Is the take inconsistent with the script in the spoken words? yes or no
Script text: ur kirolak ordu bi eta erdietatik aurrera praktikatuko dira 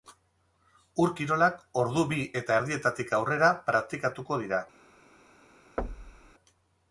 no